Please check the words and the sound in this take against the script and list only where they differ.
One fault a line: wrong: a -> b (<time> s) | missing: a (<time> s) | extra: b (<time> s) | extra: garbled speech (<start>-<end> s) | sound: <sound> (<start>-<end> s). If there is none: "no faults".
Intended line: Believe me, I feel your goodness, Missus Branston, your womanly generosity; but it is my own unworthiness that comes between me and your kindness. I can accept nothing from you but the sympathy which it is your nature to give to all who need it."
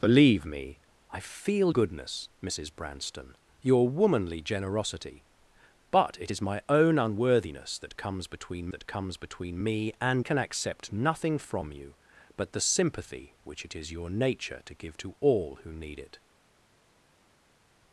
missing: your (1.8 s)
wrong: me and your kindness I -> that comes between me and (8.7 s)